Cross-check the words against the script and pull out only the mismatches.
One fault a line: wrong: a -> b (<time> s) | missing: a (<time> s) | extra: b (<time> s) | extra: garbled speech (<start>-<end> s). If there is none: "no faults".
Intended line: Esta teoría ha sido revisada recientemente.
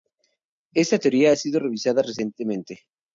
no faults